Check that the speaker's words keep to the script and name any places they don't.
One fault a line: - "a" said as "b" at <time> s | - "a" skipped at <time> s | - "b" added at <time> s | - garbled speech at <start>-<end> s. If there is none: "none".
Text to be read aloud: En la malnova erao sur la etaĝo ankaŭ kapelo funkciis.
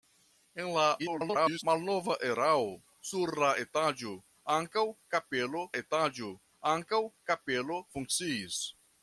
- garbled speech at 1.0-1.6 s
- "etaĝo ankaŭ kapelo" added at 5.8 s